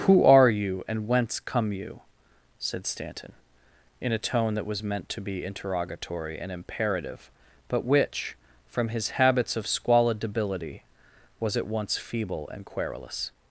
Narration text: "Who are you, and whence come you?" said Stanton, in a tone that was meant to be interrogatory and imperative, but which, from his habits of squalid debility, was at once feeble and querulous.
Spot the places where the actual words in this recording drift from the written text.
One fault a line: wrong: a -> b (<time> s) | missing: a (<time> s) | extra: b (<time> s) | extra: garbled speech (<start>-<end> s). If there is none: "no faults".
no faults